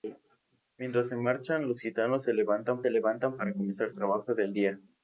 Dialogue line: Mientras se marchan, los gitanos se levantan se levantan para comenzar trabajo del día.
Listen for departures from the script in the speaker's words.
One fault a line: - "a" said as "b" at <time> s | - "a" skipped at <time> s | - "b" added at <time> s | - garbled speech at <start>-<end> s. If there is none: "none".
none